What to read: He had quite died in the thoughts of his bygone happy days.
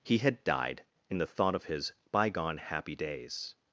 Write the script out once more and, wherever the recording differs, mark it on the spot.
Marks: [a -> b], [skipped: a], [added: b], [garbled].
He had [skipped: quite] died in the [thoughts -> thought] of his bygone happy days.